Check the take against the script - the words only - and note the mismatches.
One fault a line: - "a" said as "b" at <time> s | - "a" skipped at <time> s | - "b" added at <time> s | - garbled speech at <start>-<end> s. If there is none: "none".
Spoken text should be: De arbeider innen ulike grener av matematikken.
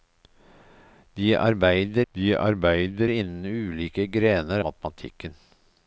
- "de arbeider" added at 2.1 s
- "av" skipped at 4.6 s